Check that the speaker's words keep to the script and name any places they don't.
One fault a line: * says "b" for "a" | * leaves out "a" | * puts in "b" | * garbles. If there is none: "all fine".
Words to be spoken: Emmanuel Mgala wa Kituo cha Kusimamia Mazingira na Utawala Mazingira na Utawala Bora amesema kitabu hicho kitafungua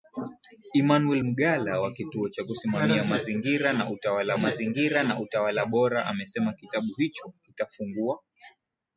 all fine